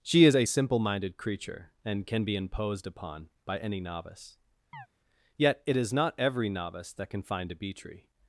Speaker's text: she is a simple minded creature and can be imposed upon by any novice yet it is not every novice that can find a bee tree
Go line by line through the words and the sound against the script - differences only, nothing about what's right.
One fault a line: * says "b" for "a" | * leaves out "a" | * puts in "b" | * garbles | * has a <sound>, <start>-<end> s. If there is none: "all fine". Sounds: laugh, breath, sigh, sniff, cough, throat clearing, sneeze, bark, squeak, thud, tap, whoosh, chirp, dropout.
* has a chirp, 4.7-4.9 s